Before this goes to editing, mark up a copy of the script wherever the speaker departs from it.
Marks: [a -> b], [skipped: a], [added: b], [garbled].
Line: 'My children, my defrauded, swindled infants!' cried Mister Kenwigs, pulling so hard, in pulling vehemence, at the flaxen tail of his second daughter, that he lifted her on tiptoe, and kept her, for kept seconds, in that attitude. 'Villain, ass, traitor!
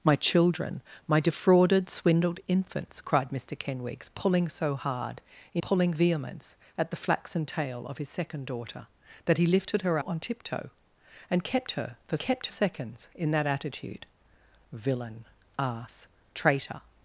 'My children, my defrauded, swindled infants!' cried Mister Kenwigs, pulling so hard, in pulling vehemence, at the flaxen tail of his second daughter, that he lifted her on tiptoe, and kept her, for kept seconds, in that attitude. 'Villain, ass, traitor!